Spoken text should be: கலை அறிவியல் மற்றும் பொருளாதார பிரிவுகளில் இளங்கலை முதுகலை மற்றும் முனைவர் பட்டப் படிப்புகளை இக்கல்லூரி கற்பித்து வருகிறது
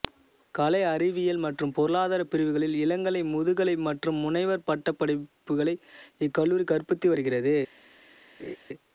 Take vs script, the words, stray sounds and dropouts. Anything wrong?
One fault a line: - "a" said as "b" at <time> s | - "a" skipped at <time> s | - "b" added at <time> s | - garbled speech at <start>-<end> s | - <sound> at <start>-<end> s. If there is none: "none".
- laugh at 8.4-8.6 s